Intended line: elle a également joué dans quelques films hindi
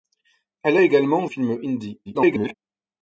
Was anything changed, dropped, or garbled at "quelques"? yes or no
yes